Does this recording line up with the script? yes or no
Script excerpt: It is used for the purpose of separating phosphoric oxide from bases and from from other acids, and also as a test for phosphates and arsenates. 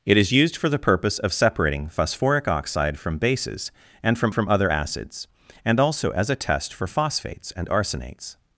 yes